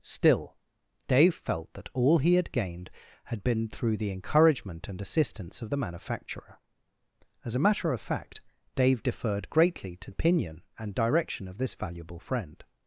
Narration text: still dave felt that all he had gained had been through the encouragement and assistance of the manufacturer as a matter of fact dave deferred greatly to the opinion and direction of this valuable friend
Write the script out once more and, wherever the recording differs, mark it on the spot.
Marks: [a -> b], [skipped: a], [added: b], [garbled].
still dave felt that all he had gained had been through the encouragement and assistance of the manufacturer as a matter of fact dave deferred greatly to [skipped: the] opinion and direction of this valuable friend